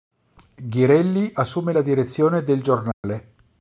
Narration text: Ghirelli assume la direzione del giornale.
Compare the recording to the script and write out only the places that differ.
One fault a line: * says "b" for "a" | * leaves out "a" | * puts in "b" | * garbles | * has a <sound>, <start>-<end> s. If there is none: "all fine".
* has a dropout, 2.9-3.0 s